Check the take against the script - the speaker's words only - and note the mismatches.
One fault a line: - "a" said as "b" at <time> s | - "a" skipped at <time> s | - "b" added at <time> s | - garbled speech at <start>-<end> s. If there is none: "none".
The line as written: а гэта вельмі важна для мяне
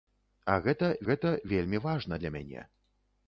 - "гэта" added at 1.1 s